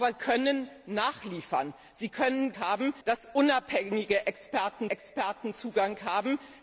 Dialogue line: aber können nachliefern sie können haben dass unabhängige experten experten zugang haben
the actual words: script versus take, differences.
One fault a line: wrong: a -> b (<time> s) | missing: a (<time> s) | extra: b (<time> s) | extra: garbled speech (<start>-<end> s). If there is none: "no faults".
no faults